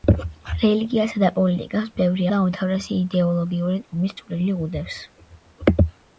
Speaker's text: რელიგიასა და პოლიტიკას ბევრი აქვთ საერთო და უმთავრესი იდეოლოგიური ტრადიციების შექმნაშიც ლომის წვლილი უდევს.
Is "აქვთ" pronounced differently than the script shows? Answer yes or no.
yes